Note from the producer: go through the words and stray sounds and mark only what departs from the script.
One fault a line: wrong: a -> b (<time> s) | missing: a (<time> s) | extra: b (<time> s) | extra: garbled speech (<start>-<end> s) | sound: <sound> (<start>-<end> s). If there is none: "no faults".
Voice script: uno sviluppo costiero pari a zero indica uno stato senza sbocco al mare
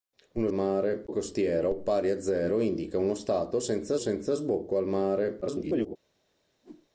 wrong: sviluppo -> mare (0.5 s)
extra: senza (4.0 s)
extra: garbled speech (5.4-6.0 s)
sound: whoosh (6.6-6.9 s)